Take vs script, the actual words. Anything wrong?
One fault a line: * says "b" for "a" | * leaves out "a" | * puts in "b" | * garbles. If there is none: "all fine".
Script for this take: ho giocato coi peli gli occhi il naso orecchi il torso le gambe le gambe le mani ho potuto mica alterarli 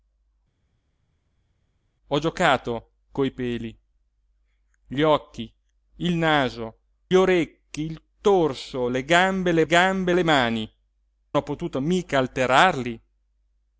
all fine